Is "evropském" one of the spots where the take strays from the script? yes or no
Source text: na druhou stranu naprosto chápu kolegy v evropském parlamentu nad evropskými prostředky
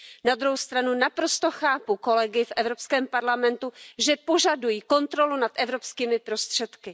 no